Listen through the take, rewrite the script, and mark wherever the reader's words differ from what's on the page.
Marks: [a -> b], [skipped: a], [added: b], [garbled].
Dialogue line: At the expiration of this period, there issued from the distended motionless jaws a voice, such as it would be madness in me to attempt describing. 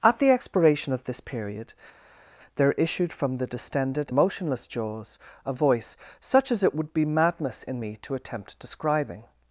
At the expiration of this period, there issued from the distended motionless jaws a voice, such as it would be madness in me to attempt describing.